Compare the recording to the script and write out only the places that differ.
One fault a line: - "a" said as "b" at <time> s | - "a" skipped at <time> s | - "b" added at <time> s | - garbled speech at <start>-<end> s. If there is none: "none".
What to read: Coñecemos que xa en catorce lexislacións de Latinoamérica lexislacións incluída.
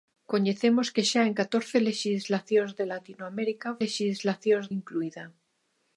none